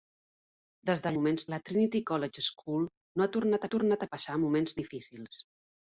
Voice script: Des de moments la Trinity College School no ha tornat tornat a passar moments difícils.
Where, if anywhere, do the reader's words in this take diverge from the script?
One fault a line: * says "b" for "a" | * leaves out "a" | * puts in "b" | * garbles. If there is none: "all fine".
all fine